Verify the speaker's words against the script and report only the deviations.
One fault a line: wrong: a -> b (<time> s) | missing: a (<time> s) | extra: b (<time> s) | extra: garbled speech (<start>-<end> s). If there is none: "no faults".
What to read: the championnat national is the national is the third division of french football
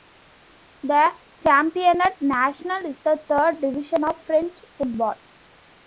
missing: national is the (3.2 s)